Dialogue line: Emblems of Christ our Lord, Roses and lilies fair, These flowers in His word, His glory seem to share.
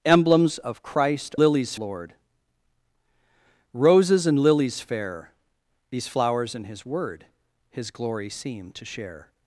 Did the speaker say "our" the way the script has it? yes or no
no